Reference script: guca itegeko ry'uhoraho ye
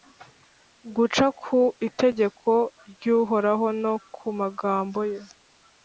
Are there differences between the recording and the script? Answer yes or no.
yes